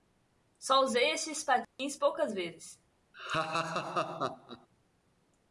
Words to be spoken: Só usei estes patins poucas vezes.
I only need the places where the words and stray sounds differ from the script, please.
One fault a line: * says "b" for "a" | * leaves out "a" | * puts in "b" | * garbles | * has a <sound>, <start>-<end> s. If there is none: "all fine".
* has a dropout, 1.6-1.8 s
* has a laugh, 3.1-4.7 s